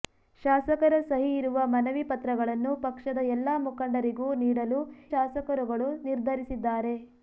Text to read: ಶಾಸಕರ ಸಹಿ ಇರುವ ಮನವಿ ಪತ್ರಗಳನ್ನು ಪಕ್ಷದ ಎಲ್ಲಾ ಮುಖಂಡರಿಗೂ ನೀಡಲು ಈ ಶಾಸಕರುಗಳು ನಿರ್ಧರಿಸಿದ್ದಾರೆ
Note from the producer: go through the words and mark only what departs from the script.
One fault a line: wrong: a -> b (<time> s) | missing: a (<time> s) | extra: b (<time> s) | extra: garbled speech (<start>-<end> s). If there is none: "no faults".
missing: ಈ (4.8 s)